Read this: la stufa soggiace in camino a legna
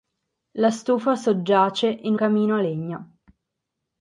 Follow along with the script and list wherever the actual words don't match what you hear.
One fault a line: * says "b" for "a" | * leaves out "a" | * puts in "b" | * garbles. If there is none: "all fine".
all fine